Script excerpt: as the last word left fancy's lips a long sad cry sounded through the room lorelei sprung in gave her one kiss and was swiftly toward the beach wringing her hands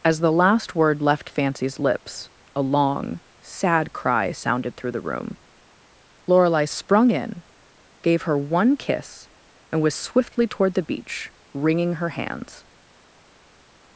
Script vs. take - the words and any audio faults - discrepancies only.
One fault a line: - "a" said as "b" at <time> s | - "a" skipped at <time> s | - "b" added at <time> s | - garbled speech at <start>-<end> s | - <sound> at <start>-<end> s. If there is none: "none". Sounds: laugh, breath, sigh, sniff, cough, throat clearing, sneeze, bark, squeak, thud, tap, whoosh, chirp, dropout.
none